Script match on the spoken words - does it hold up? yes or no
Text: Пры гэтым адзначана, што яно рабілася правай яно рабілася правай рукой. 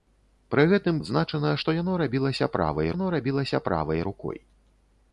yes